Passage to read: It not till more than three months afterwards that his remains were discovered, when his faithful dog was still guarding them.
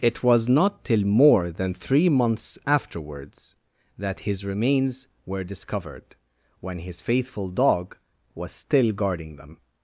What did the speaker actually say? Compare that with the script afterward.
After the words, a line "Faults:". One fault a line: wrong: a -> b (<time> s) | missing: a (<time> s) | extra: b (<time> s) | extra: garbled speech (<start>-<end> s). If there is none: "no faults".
It was not till more than three months afterwards that his remains were discovered, when his faithful dog was still guarding them.
Faults:
extra: was (0.2 s)